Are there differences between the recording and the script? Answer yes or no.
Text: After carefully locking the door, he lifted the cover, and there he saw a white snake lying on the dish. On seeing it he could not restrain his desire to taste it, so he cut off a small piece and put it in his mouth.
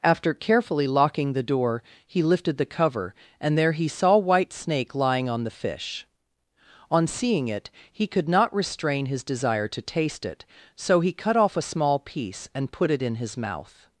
yes